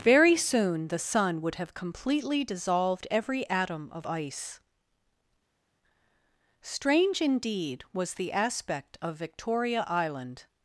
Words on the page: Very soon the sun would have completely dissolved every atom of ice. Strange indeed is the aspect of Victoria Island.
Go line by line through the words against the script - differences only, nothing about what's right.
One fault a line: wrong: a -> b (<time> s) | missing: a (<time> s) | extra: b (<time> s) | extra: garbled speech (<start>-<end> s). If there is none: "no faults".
wrong: is -> was (7.9 s)